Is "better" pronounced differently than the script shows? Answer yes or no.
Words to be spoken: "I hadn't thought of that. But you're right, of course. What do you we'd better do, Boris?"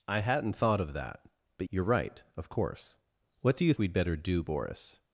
no